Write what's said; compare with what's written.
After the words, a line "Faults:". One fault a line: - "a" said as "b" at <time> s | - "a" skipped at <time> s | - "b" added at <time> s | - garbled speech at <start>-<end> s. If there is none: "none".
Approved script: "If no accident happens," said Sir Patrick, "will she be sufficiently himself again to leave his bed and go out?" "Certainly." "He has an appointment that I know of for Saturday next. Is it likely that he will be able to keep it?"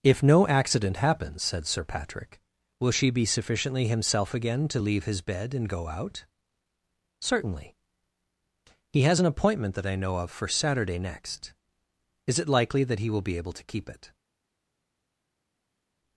"If no accident happens," said Sir Patrick, "will she be sufficiently himself again to leave his bed and go out?" "Certainly." "He has an appointment that I know of for Saturday next. Is it likely that he will be able to keep it?"
Faults:
none